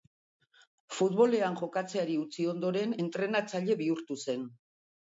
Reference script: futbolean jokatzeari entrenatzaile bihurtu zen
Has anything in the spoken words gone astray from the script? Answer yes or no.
yes